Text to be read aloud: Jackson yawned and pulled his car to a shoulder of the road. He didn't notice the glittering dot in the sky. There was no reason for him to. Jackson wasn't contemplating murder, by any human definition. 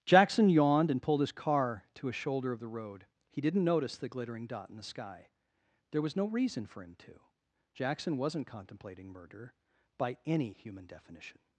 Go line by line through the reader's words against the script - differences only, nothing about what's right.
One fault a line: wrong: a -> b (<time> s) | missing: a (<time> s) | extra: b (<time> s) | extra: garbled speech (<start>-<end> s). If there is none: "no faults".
no faults